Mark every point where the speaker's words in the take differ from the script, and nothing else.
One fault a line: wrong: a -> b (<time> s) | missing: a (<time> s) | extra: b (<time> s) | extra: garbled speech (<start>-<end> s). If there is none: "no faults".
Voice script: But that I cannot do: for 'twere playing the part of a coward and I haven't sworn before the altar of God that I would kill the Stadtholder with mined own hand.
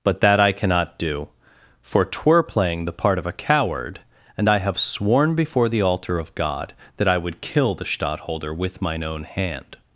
wrong: haven't -> have (4.6 s)
wrong: mined -> mine (8.8 s)